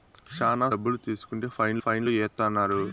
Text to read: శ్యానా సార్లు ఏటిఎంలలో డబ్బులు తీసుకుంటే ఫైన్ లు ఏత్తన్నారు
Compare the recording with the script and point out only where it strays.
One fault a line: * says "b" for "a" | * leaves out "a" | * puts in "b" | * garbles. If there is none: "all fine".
* leaves out "సార్లు ఏటిఎంలలో"
* puts in "ఫైన్"